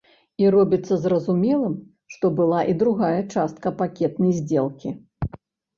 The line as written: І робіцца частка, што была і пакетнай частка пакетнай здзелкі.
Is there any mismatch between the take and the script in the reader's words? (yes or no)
yes